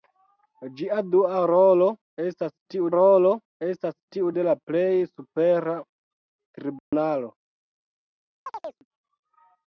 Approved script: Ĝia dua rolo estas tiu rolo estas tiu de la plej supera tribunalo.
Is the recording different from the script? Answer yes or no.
no